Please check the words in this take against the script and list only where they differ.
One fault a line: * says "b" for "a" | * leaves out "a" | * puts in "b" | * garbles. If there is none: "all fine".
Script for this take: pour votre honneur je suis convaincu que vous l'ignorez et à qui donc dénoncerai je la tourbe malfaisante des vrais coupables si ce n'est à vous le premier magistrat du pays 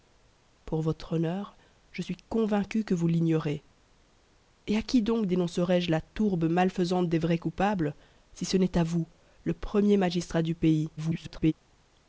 * garbles